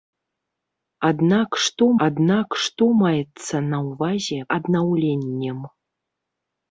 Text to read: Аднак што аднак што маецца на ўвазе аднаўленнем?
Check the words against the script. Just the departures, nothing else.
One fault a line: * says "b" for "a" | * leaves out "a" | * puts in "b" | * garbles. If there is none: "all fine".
all fine